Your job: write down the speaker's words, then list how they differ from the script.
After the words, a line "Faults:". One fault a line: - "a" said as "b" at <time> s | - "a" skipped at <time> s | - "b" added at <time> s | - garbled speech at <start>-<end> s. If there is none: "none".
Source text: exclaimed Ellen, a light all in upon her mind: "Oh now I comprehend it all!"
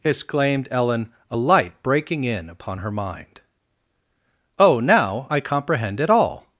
exclaimed Ellen, a light breaking in upon her mind: "Oh now I comprehend it all!"
Faults:
- "all" said as "breaking" at 1.8 s